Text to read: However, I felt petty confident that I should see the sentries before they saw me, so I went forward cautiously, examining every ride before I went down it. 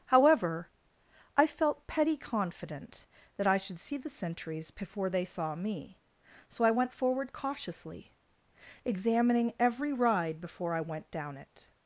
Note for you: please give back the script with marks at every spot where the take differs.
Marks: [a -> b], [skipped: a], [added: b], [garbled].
However, I felt petty confident that I should see the sentries before they saw me, so I went forward cautiously, examining every ride before I went down it.